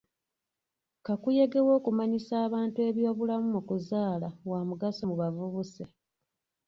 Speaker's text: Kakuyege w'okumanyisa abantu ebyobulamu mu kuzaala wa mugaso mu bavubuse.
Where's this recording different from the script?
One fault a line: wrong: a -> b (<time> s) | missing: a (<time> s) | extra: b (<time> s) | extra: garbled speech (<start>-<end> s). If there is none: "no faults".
no faults